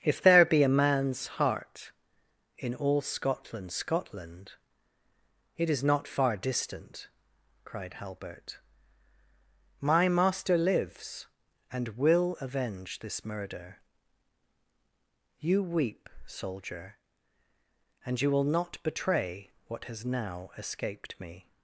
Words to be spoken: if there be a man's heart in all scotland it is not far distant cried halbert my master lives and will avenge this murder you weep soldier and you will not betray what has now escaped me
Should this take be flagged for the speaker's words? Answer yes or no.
yes